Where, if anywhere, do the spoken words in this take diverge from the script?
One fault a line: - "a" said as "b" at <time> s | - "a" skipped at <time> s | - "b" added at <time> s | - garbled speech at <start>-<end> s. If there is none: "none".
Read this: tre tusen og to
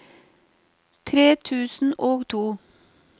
none